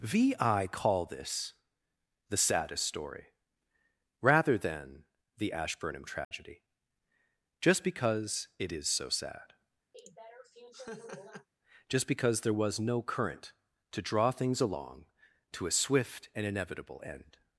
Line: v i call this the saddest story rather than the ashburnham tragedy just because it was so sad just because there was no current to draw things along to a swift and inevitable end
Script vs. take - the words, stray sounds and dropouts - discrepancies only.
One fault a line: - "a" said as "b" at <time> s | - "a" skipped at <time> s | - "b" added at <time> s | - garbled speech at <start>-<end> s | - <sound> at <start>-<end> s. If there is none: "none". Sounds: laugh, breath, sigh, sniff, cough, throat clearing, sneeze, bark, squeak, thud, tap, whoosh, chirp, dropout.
- dropout at 6.2-6.3 s
- "was" said as "is" at 8.7 s
- laugh at 9.9-11.5 s